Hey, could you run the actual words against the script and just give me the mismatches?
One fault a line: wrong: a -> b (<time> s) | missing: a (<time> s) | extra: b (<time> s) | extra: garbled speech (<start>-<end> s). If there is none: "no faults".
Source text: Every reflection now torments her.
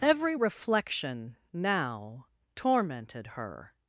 wrong: torments -> tormented (2.6 s)